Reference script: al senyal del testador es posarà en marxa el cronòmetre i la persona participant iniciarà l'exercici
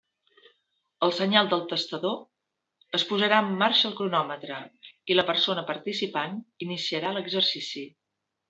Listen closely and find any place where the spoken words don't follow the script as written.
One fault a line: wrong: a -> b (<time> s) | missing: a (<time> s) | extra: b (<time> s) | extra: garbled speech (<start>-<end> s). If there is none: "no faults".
no faults